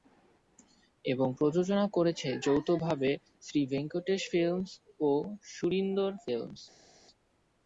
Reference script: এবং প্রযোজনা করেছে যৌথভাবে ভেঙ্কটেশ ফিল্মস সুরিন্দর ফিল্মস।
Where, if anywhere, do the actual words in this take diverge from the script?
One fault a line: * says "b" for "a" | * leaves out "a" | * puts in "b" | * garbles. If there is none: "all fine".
* puts in "শ্রী"
* puts in "ও"